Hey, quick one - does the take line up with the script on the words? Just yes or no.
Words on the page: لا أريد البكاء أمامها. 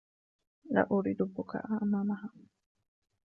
yes